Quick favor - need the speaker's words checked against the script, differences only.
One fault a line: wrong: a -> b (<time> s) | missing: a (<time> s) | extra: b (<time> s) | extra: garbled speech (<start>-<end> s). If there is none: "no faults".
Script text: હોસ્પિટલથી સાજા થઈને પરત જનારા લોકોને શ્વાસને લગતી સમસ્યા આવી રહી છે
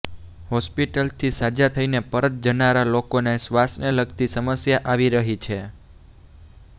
no faults